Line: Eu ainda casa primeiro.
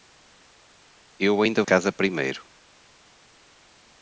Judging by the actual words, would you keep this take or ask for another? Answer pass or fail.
pass